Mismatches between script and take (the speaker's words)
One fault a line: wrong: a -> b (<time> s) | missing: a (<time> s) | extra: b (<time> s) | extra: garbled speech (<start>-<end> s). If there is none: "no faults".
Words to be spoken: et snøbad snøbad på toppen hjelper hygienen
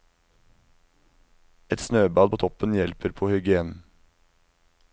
missing: snøbad (2.3 s)
extra: på (3.2 s)